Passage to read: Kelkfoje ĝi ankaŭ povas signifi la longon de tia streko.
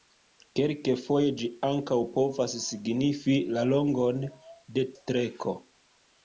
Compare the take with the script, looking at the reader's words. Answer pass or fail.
fail